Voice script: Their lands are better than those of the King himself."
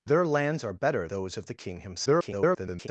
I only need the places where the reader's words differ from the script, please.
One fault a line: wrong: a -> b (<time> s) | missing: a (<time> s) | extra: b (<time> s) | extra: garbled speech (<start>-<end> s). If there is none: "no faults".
missing: than (1.1 s)
extra: garbled speech (2.1-2.9 s)